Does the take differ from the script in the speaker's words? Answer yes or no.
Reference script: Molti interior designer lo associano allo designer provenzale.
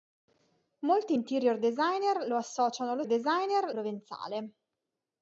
no